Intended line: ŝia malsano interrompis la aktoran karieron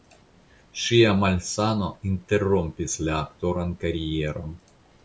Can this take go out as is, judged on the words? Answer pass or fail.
pass